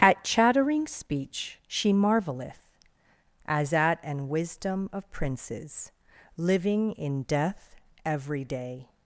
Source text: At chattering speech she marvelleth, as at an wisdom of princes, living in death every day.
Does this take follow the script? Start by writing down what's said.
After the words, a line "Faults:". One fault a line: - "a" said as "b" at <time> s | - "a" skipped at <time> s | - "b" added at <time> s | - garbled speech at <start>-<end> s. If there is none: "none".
At chattering speech she marvelleth, as at an wisdom of princes, living in death every day.
Faults:
none